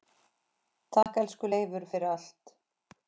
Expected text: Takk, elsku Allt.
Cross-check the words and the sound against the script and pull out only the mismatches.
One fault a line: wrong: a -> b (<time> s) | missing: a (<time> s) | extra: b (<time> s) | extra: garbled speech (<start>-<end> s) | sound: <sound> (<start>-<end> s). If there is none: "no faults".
sound: dropout (1.0-1.1 s)
extra: Leifur fyrir (1.5 s)